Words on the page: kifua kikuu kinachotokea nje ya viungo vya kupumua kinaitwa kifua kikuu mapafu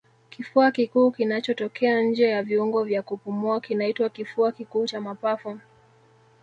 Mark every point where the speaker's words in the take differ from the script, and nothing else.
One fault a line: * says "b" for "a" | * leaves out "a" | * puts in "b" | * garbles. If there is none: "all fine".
* puts in "cha"